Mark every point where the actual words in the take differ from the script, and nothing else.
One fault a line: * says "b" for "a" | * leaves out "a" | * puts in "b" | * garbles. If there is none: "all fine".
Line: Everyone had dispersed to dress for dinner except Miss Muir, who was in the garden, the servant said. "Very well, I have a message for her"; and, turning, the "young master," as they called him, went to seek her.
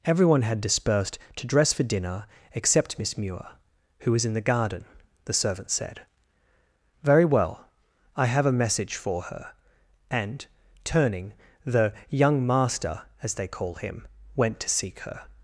* says "call" for "called"